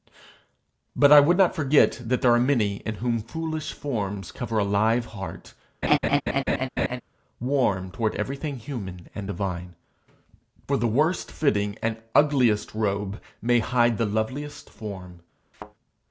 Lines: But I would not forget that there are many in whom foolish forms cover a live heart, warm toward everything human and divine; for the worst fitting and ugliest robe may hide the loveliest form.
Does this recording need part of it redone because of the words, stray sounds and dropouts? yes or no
yes